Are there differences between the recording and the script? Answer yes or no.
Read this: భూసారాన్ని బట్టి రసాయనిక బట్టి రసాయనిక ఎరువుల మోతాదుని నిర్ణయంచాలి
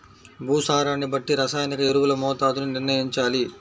yes